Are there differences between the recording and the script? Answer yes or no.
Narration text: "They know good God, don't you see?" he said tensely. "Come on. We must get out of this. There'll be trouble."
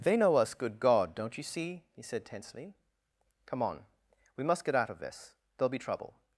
yes